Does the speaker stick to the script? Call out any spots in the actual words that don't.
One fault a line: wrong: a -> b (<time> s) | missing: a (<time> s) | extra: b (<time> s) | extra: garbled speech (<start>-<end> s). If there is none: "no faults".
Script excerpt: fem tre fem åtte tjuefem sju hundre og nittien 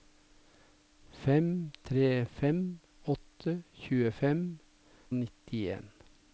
missing: sju hundre (4.4 s)